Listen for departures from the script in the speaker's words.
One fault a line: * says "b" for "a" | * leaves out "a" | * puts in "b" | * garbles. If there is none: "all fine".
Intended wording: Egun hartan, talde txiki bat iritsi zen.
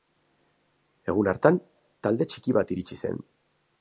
all fine